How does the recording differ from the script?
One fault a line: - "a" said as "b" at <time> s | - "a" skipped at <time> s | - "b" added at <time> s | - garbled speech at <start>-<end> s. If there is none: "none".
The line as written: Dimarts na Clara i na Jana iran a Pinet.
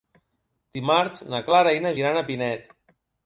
- "Jana" skipped at 1.9 s